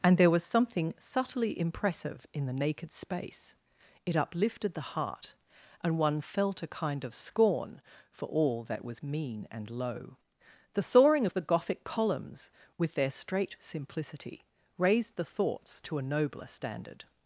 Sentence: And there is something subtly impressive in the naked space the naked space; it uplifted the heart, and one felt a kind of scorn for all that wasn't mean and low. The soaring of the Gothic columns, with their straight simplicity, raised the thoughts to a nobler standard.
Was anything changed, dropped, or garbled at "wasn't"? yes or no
yes